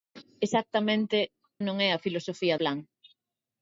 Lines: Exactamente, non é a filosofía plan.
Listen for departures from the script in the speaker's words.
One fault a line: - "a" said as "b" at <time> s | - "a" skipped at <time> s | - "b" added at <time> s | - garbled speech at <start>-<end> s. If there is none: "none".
none